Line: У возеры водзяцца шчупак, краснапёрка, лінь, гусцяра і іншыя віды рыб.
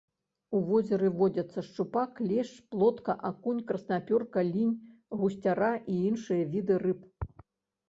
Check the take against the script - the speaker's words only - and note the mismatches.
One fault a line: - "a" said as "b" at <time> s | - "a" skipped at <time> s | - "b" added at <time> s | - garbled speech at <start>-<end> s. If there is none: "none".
- "лешч плотка акунь" added at 2.3 s